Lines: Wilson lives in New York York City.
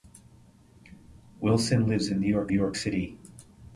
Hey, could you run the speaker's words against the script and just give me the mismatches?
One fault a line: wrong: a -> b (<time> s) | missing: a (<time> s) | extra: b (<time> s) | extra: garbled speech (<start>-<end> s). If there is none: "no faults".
no faults